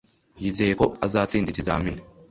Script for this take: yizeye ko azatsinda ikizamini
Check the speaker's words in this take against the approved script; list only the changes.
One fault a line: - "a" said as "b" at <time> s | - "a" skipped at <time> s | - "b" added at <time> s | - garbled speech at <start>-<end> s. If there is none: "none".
none